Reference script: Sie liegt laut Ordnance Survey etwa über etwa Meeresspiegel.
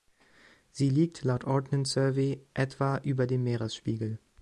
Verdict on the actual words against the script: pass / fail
fail